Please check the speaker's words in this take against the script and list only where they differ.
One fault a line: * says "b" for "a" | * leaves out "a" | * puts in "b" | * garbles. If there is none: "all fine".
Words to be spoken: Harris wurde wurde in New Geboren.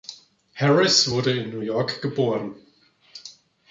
* leaves out "wurde"
* puts in "York"